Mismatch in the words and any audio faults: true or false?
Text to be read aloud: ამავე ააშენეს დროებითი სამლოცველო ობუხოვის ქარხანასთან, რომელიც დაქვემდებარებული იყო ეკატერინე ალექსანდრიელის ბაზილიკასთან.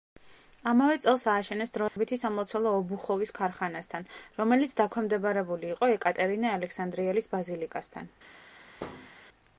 true